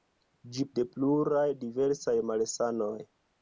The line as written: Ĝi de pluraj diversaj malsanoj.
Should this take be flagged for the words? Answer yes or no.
no